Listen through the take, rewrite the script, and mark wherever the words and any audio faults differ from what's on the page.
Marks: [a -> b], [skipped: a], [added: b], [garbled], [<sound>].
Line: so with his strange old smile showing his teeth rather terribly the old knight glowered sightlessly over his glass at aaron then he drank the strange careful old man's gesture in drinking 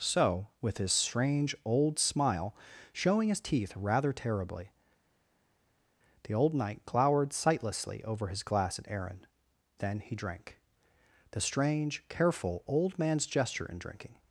so with his strange old smile showing his teeth rather terribly the old knight glowered sightlessly over his glass at aaron then he drank the strange careful old man's gesture in drinking